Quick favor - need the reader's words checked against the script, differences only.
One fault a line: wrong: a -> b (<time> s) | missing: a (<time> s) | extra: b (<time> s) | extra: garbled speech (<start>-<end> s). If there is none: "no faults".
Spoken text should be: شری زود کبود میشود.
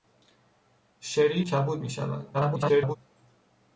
missing: زود (1.4 s)
extra: garbled speech (2.3-3.0 s)